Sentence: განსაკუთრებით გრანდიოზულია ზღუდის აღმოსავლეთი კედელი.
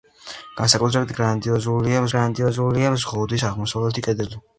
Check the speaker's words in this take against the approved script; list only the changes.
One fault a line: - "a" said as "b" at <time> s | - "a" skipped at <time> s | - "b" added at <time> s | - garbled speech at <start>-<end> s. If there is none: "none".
- "გრანდიოზულია" added at 2.2 s